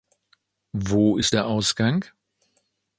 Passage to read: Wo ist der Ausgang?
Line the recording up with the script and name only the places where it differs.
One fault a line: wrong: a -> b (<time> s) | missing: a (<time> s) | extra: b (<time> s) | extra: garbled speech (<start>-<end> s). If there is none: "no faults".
no faults